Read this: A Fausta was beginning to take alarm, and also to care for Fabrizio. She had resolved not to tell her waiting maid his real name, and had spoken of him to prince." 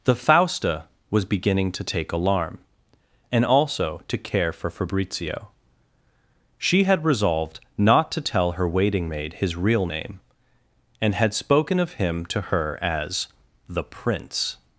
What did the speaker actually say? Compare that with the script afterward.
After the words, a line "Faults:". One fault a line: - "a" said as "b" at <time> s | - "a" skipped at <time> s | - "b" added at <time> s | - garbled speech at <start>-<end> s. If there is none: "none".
The Fausta was beginning to take alarm, and also to care for Fabrizio. She had resolved not to tell her waiting maid his real name, and had spoken of him to her as" the prince."
Faults:
- "A" said as "The" at 0.0 s
- "her as the" added at 12.4 s